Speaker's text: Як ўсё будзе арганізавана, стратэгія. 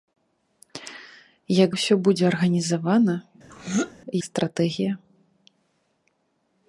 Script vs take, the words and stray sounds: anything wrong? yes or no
yes